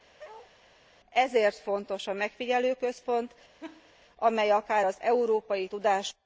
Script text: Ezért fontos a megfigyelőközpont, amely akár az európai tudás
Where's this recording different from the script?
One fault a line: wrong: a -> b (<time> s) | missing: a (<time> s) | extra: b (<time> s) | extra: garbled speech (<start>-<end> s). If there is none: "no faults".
no faults